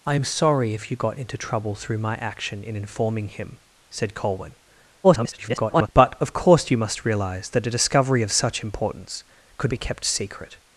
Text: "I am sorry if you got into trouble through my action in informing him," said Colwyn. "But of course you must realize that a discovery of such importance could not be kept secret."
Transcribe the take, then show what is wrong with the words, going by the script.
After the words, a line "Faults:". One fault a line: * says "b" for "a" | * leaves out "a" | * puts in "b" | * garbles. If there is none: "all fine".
"I am sorry if you got into trouble through my action in informing him," said Colwyn. [garbled] "But of course you must realize that a discovery of such importance could be kept secret."
Faults:
* garbles
* leaves out "not"